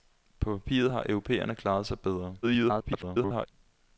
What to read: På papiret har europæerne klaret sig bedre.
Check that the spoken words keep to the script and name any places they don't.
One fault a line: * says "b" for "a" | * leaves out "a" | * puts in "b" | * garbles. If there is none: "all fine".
* garbles